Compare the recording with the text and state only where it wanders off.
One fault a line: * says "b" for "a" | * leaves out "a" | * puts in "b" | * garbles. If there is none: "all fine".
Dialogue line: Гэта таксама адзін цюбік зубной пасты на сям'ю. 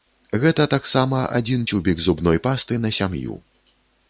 all fine